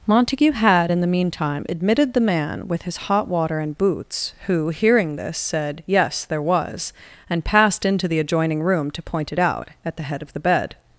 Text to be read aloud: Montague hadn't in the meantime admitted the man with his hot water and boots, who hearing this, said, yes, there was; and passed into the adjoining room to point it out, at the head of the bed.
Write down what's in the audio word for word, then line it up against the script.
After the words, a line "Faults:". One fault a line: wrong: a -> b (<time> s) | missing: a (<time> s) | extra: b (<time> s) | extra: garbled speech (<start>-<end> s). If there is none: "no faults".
Montague had in the meantime admitted the man with his hot water and boots, who hearing this, said, yes, there was; and passed into the adjoining room to point it out, at the head of the bed.
Faults:
wrong: hadn't -> had (0.5 s)